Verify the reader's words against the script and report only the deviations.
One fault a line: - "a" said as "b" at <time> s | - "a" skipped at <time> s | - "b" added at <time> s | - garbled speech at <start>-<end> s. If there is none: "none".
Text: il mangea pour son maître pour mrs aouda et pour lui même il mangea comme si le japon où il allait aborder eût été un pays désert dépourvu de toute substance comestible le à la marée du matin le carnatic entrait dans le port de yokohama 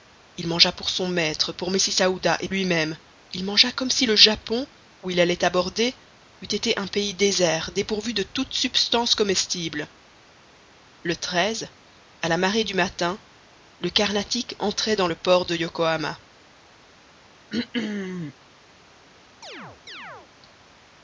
- "pour" skipped at 2.5 s